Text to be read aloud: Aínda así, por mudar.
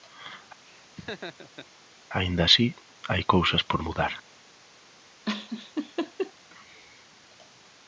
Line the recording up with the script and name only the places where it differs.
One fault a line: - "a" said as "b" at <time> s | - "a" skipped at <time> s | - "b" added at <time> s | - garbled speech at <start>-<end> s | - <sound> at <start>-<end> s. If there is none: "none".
- laugh at 0.6-1.7 s
- "hai cousas" added at 3.1 s
- laugh at 5.3-6.3 s